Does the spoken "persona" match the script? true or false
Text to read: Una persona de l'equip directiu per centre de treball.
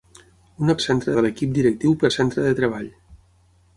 false